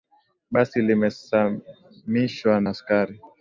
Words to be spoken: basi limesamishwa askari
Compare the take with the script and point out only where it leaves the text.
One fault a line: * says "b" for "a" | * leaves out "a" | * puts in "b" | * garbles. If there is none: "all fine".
all fine